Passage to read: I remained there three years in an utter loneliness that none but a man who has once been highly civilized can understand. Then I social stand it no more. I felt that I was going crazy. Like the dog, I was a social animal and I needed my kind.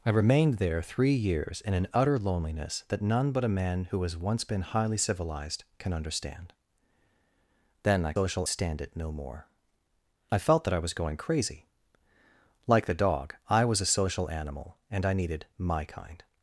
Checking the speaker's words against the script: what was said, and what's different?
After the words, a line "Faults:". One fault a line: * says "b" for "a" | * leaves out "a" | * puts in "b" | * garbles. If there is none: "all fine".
I remained there three years in an utter loneliness that none but a man who has once been highly civilized can understand. Then I social stand it no more. I felt that I was going crazy. Like the dog, I was a social animal and I needed my kind.
Faults:
all fine